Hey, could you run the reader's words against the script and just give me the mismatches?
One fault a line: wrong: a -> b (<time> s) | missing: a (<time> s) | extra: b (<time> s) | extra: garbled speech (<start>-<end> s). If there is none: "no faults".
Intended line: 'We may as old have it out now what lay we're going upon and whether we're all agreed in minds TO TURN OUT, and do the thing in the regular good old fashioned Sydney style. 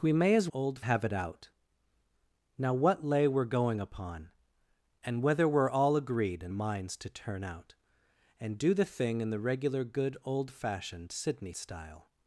no faults